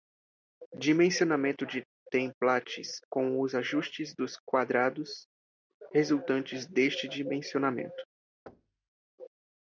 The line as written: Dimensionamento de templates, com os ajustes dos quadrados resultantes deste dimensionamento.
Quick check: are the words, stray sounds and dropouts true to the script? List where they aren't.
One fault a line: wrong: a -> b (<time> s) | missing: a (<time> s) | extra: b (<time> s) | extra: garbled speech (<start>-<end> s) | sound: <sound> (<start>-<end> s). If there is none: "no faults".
sound: thud (8.5-8.9 s)